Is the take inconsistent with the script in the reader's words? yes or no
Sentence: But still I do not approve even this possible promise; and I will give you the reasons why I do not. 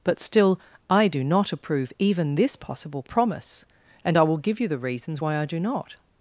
no